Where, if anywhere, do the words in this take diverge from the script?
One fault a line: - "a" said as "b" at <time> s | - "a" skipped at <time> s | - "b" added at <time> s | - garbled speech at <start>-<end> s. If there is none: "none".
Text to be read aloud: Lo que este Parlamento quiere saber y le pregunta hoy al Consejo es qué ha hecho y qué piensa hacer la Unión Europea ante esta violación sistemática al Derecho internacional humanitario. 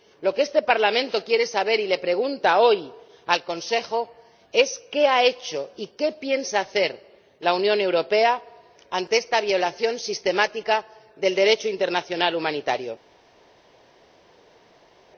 - "al" said as "del" at 11.2 s